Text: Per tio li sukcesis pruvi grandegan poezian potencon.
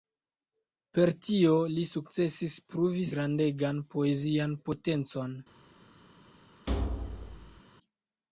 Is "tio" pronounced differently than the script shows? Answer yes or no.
no